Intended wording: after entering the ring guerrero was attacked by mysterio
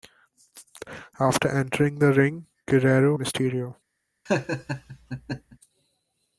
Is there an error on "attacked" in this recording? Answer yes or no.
yes